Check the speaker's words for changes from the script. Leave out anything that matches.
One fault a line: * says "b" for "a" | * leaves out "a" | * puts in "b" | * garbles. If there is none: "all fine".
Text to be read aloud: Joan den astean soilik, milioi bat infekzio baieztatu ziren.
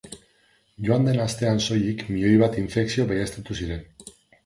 all fine